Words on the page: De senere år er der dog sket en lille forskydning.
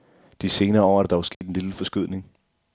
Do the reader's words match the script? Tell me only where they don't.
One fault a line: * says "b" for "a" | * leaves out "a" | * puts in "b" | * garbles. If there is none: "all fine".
all fine